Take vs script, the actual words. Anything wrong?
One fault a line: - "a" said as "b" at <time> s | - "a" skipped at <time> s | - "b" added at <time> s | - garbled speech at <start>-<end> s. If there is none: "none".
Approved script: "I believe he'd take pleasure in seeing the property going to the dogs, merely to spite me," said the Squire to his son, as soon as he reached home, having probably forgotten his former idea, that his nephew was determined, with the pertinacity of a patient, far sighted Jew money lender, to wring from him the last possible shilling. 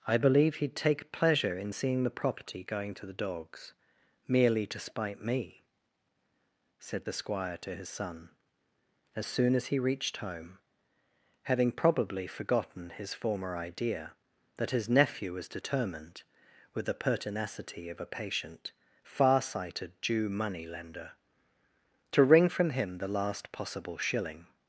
none